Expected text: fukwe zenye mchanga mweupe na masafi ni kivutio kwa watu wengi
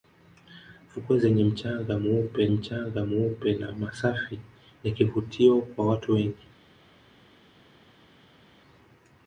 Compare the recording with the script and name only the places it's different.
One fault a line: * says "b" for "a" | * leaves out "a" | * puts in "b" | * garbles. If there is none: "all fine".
* puts in "mchanga mweupe"